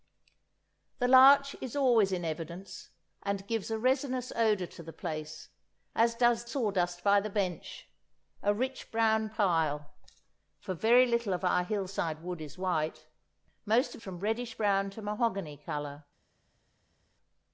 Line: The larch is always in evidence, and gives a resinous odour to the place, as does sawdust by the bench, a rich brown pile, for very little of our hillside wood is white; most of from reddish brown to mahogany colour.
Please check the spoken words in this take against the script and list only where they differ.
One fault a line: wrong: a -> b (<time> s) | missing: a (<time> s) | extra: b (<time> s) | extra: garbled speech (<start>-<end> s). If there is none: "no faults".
no faults